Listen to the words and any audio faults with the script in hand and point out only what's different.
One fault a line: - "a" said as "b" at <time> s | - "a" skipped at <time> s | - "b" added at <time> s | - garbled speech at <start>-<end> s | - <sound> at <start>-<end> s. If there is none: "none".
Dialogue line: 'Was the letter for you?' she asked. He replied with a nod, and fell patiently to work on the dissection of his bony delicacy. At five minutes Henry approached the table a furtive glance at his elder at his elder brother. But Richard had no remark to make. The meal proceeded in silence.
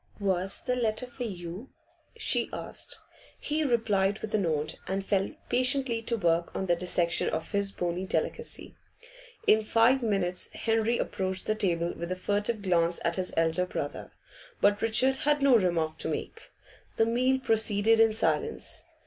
- "At" said as "In" at 9.4 s
- "with" added at 12.0 s
- "at his elder" skipped at 13.7 s